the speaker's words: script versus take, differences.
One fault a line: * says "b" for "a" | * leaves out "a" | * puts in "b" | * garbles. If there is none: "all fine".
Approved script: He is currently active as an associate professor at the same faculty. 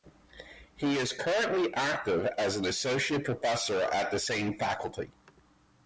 all fine